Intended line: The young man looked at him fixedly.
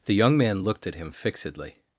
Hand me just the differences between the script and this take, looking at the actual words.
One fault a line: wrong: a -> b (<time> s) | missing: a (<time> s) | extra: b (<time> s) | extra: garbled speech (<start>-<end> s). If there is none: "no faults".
no faults